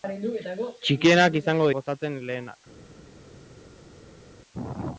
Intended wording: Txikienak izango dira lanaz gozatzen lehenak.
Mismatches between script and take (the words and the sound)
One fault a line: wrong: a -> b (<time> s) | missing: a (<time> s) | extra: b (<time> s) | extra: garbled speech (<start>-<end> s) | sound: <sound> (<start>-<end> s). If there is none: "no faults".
missing: dira lanaz (1.7 s)